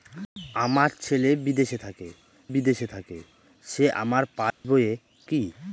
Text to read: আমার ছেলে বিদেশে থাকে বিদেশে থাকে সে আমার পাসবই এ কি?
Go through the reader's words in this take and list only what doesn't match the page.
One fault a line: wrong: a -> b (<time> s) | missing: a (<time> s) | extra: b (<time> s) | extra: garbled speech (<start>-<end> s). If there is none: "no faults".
no faults